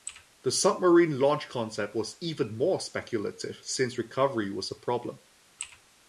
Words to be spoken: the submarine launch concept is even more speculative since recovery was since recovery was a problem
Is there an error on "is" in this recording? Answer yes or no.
yes